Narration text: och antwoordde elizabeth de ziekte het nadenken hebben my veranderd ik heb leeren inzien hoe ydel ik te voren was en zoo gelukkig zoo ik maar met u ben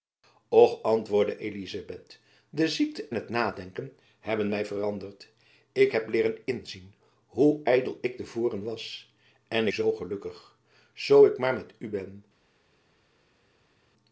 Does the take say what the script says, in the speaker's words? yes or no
yes